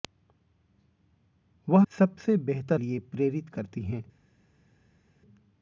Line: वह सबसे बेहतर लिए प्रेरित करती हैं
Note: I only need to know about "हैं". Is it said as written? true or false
true